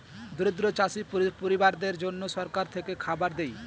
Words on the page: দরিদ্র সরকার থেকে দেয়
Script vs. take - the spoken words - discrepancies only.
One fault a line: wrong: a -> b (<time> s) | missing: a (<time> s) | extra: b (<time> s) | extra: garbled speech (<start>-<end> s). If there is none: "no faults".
extra: চাষী পরিবারদের জন্যে (0.7 s)
extra: খাবার (3.0 s)